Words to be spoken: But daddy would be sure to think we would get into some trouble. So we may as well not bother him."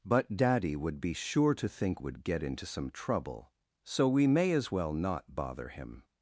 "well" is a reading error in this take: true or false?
false